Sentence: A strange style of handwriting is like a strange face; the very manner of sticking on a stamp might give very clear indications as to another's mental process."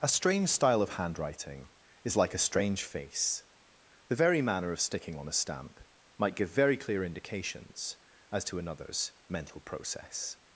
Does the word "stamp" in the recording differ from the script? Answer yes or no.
no